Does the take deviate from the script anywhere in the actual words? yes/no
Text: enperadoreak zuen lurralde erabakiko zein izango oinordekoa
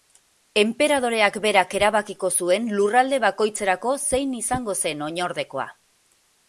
yes